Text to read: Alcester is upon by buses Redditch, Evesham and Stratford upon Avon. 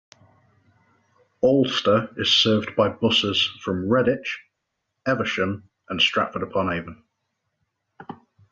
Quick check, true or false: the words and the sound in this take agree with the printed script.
false